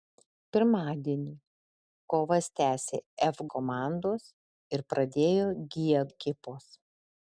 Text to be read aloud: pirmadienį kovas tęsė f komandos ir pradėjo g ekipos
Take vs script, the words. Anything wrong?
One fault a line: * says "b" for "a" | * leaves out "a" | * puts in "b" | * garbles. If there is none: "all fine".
all fine